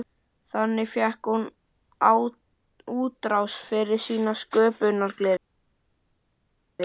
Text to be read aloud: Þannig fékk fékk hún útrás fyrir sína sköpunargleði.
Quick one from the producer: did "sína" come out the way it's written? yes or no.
yes